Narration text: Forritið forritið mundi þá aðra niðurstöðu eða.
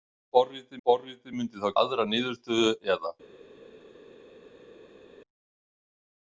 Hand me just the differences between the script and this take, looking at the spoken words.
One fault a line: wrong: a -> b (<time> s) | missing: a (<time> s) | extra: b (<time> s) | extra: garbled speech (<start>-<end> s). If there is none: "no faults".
no faults